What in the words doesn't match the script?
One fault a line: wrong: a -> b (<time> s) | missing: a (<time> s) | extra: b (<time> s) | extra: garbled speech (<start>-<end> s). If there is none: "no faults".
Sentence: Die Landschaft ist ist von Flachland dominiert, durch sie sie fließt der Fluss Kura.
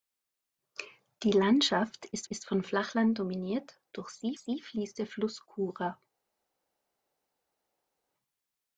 no faults